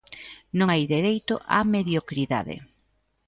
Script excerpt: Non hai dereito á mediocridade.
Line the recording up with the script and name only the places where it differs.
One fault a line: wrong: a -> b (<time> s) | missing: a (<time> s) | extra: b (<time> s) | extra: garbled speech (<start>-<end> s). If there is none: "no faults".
no faults